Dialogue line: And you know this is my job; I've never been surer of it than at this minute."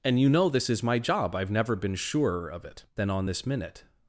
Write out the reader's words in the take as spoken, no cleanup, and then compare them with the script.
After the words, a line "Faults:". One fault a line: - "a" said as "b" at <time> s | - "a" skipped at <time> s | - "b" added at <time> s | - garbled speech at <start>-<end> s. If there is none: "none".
And you know this is my job; I've never been surer of it than on this minute."
Faults:
- "at" said as "on" at 3.1 s